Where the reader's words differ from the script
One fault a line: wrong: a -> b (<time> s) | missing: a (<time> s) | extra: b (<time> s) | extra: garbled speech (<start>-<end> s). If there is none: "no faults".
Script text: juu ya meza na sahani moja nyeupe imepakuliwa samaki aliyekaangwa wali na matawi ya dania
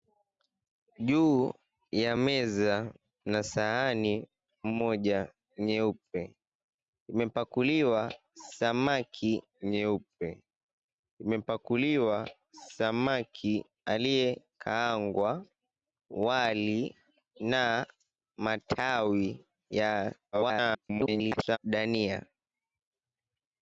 extra: nyeupe imepakuliwa samaki (9.6 s)
extra: garbled speech (20.3-21.6 s)